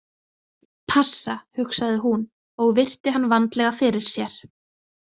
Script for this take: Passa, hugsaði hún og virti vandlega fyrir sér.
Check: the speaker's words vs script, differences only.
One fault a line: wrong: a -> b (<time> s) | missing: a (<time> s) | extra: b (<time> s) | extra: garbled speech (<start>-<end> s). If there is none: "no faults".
extra: hann (3.2 s)